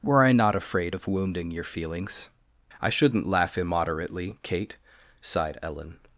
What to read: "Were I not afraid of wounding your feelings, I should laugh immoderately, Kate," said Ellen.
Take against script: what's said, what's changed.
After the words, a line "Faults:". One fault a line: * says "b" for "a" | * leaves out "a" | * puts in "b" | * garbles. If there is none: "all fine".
"Were I not afraid of wounding your feelings, I shouldn't laugh immoderately, Kate," sighed Ellen.
Faults:
* says "shouldn't" for "should"
* says "sighed" for "said"